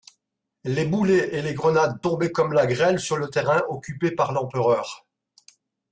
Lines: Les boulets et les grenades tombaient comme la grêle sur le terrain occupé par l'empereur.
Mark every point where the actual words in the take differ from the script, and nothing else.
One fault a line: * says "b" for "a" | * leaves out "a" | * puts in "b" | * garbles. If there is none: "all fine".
all fine